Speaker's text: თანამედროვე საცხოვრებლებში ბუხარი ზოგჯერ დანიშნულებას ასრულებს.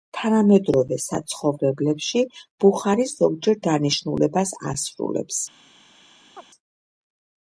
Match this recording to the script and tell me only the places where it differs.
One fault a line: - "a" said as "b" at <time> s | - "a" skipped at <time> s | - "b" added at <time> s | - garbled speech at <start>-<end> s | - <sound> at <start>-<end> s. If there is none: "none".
- chirp at 6.4-6.5 s